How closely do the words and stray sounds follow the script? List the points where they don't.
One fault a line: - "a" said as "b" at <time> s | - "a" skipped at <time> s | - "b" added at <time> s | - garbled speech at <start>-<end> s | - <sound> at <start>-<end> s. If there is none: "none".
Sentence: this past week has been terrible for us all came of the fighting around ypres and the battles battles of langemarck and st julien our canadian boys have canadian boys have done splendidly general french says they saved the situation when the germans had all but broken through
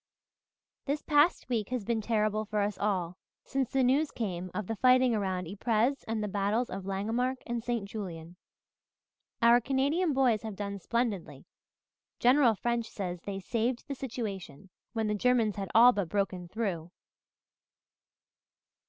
- "since the news" added at 3.4 s
- "battles" skipped at 6.7 s
- "canadian boys have" skipped at 10.6 s